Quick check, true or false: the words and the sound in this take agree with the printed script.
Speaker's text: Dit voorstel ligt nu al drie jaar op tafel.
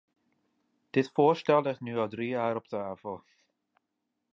true